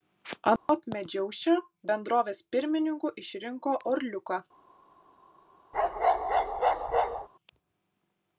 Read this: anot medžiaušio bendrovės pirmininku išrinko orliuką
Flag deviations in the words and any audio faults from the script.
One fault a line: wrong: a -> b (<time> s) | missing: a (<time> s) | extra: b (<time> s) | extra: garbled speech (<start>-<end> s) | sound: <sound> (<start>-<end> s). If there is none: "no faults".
sound: dropout (0.6-0.7 s)
sound: bark (5.7-7.3 s)